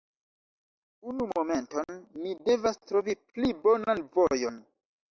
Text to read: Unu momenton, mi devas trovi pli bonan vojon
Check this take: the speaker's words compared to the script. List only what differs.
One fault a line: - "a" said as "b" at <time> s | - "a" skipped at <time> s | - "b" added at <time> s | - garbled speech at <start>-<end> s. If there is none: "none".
none